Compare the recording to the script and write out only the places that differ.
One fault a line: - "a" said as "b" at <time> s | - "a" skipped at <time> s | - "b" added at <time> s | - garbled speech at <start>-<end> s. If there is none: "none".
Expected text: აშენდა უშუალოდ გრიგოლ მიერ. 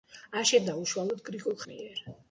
none